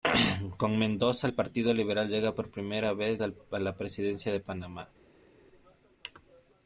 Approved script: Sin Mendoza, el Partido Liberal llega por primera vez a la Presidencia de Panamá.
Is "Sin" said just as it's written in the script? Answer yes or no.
no